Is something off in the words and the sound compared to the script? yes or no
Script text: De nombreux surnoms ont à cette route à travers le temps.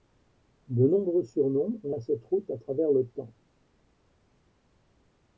no